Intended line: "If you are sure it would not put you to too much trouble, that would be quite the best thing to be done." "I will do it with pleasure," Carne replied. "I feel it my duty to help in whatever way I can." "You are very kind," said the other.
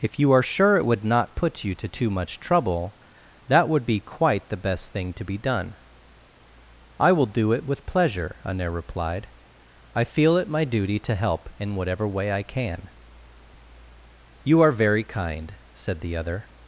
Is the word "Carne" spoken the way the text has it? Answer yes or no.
no